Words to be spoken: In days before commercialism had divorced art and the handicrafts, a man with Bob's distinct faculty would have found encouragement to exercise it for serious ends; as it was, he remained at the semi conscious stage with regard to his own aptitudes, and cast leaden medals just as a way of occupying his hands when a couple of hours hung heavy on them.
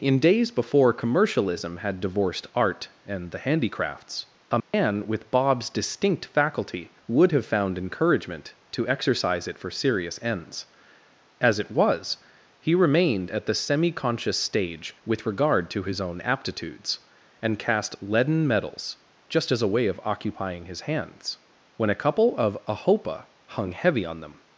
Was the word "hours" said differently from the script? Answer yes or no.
yes